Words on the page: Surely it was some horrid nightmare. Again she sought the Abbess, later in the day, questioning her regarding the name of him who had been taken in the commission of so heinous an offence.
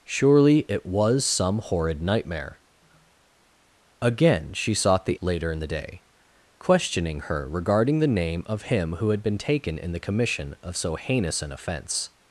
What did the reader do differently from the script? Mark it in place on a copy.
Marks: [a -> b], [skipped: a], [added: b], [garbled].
Surely it was some horrid nightmare. Again she sought the [skipped: Abbess,] later in the day, questioning her regarding the name of him who had been taken in the commission of so heinous an offence.